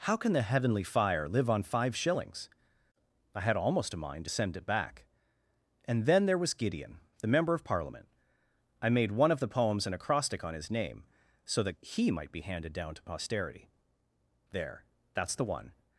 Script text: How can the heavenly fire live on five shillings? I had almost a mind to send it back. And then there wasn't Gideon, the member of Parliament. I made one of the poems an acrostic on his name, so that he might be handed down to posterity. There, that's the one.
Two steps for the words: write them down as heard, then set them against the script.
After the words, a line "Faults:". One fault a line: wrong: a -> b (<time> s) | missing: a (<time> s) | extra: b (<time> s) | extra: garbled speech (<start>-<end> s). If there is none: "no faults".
How can the heavenly fire live on five shillings? I had almost a mind to send it back. And then there was Gideon, the member of Parliament. I made one of the poems an acrostic on his name, so that he might be handed down to posterity. There, that's the one.
Faults:
wrong: wasn't -> was (6.4 s)